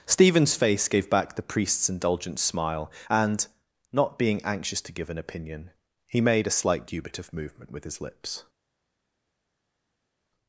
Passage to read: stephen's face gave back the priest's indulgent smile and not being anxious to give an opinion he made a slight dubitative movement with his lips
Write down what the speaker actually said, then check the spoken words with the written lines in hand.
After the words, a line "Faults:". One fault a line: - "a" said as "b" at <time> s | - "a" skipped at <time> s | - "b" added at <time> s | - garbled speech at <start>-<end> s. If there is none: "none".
stephen's face gave back the priest's indulgent smile and not being anxious to give an opinion he made a slight dubitative movement with his lips
Faults:
none